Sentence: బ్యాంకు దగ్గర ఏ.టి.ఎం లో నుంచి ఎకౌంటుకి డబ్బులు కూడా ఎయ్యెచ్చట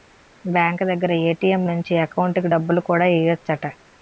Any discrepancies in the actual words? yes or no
yes